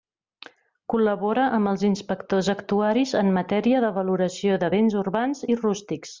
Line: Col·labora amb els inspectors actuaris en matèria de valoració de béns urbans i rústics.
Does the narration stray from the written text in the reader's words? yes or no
no